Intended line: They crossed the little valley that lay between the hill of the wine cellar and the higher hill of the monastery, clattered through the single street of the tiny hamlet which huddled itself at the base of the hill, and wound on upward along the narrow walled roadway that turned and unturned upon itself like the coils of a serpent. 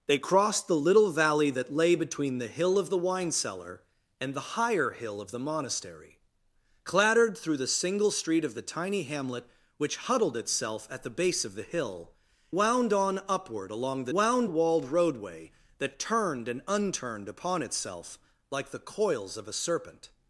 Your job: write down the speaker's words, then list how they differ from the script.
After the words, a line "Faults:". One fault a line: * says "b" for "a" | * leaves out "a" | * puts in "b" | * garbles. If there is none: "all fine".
They crossed the little valley that lay between the hill of the wine cellar and the higher hill of the monastery, clattered through the single street of the tiny hamlet which huddled itself at the base of the hill, wound on upward along the wound walled roadway that turned and unturned upon itself like the coils of a serpent.
Faults:
* leaves out "and"
* says "wound" for "narrow"